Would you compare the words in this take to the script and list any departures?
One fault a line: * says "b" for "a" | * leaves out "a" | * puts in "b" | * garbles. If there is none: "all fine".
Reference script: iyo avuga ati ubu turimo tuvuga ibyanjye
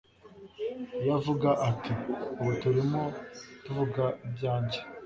all fine